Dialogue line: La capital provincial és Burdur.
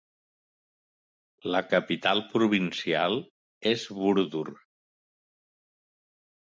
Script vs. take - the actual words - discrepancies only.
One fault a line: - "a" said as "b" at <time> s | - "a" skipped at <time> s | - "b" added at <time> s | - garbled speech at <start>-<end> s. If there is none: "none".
none